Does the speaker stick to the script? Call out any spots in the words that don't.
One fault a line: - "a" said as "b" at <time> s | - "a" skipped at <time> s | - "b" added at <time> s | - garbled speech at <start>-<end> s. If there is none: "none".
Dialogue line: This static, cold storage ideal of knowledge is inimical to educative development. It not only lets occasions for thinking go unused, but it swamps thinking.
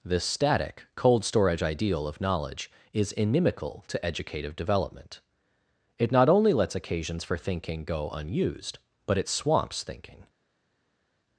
none